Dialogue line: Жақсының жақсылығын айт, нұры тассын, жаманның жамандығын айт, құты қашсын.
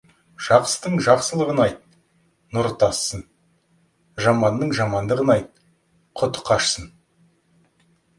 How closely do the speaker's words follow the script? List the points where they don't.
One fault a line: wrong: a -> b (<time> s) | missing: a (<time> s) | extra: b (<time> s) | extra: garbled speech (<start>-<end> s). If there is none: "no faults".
no faults